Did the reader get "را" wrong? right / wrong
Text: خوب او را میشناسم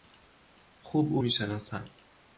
wrong